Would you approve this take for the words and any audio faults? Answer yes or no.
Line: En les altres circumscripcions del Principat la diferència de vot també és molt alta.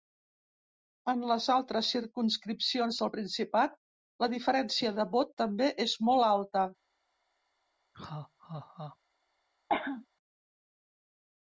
no